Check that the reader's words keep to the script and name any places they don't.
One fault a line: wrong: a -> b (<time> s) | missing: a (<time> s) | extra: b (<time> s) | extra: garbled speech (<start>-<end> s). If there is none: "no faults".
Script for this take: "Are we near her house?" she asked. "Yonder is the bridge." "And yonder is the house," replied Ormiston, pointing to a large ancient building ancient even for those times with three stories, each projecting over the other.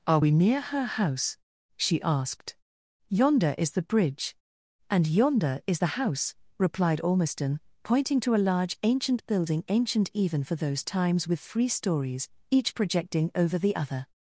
no faults